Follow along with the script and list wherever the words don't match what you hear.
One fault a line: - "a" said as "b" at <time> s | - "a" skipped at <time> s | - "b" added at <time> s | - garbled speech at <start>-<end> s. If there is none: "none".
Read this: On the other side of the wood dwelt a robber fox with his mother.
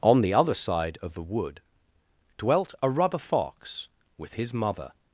- "robber" said as "rubber" at 2.9 s